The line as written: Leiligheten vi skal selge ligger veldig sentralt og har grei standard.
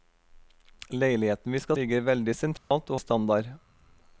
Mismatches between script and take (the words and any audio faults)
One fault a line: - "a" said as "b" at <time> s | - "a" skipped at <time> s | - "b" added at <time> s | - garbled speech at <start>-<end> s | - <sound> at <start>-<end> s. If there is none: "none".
- "selge" skipped at 1.8 s
- dropout at 2.6-2.7 s
- "har grei" skipped at 3.0 s